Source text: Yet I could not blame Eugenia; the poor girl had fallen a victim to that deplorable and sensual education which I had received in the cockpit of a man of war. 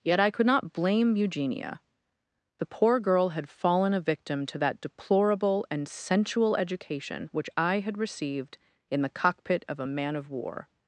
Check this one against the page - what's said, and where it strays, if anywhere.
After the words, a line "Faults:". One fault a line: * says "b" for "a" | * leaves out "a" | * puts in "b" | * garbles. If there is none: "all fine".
Yet I could not blame Eugenia; the poor girl had fallen a victim to that deplorable and sensual education which I had received in the cockpit of a man of war.
Faults:
all fine